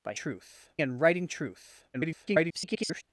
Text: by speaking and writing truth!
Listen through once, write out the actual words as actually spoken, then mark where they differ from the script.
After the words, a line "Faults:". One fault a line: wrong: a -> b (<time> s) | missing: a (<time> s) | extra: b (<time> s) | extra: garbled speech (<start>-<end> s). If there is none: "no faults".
by truth and writing truth! [garbled]
Faults:
wrong: speaking -> truth (0.1 s)
extra: garbled speech (1.9-3.0 s)